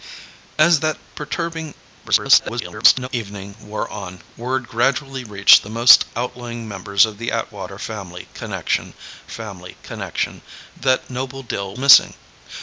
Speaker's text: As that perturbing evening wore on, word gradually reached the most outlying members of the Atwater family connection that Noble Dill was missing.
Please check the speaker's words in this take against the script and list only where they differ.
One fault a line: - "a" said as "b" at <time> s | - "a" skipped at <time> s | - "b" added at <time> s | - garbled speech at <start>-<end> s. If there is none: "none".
- garbled speech at 2.0-3.1 s
- "family connection" added at 9.3 s
- "was" skipped at 11.7 s